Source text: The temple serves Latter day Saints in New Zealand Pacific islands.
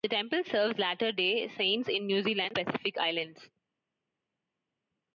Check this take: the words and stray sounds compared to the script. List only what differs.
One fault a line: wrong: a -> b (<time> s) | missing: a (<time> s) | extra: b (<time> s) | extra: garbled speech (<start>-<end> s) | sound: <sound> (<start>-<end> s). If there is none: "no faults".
no faults